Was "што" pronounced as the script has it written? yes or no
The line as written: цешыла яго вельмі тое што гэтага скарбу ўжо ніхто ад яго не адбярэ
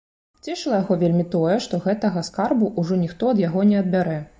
yes